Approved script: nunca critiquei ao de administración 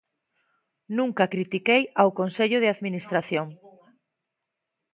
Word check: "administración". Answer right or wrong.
right